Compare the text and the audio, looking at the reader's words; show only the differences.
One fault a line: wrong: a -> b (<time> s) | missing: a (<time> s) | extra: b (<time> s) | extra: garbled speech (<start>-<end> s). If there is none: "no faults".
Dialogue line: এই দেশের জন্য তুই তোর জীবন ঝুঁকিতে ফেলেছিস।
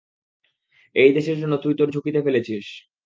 missing: জীবন (1.9 s)